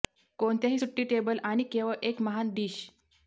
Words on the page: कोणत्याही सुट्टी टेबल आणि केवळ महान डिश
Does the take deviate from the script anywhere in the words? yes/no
yes